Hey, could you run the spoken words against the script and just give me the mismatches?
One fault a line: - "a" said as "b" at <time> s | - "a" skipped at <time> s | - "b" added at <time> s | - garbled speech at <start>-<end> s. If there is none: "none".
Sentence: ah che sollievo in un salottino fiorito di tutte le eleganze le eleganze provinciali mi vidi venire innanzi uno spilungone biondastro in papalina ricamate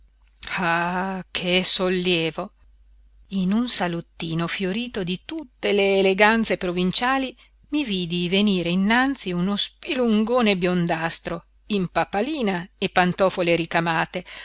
- "le eleganze" skipped at 6.6 s
- "e pantofole" added at 12.8 s